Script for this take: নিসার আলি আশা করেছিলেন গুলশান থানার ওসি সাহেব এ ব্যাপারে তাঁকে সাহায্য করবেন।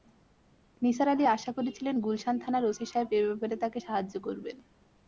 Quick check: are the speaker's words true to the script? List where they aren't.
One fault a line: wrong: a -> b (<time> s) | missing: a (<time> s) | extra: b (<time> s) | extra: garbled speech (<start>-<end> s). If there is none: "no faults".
no faults